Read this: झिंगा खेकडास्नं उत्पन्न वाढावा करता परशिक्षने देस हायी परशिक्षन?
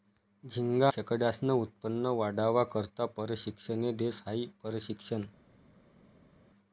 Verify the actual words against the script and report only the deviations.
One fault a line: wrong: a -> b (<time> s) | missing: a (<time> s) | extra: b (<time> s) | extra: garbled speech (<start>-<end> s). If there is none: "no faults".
no faults